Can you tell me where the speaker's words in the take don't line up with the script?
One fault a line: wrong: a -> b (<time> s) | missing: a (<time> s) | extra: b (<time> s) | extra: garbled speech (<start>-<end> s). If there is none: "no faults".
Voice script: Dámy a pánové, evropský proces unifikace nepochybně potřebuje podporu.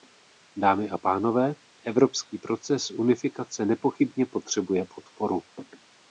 no faults